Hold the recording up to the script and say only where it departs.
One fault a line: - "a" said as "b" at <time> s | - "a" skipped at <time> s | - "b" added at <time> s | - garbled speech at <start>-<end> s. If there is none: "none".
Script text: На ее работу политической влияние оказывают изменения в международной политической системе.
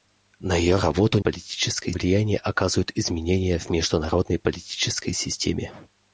none